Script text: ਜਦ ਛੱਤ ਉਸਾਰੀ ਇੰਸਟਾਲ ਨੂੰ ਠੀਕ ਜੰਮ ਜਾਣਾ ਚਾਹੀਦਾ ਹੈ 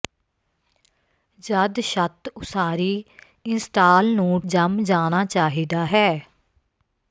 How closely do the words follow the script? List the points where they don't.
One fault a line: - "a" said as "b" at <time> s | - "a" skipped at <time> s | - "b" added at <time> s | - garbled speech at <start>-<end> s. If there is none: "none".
- "ਠੀਕ" skipped at 4.4 s